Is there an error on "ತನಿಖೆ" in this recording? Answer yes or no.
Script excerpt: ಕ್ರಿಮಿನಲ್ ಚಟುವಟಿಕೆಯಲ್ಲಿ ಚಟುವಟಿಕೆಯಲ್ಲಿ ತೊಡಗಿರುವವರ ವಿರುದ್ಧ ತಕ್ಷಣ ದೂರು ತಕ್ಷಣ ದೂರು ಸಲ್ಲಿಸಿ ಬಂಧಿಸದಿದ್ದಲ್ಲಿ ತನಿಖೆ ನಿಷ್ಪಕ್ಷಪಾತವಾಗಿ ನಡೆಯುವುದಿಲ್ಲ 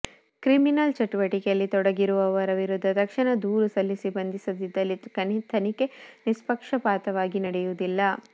no